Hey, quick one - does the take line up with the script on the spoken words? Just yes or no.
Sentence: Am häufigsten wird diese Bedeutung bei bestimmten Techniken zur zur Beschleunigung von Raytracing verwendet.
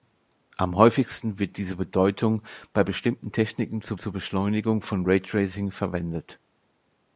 yes